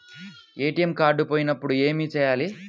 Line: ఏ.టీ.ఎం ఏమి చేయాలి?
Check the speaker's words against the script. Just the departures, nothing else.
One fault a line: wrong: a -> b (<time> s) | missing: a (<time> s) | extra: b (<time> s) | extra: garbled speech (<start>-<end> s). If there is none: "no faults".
extra: కార్డు పోయినప్పుడు (0.9 s)